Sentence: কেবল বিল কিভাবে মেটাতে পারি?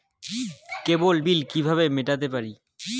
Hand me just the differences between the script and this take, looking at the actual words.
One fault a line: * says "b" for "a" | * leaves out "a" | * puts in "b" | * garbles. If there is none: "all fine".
all fine